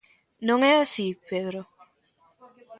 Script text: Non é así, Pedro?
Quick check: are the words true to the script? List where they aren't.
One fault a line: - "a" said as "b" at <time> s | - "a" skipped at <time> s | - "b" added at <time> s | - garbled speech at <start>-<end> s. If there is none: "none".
none